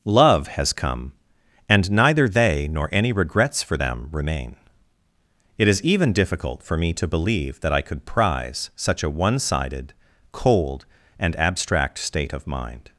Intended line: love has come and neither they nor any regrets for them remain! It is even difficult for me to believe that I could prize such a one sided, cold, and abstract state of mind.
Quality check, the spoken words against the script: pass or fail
pass